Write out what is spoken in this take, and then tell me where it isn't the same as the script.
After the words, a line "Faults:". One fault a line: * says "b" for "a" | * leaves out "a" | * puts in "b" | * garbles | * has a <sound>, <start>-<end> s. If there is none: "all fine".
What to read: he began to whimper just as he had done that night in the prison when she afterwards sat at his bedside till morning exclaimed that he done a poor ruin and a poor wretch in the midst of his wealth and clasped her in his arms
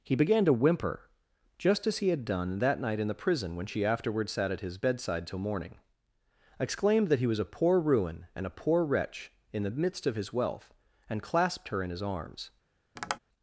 he began to whimper just as he had done that night in the prison when she afterwards sat at his bedside till morning exclaimed that he was a poor ruin and a poor wretch in the midst of his wealth and clasped her in his arms
Faults:
* says "was" for "done"
* has a tap, 13.0-13.2 s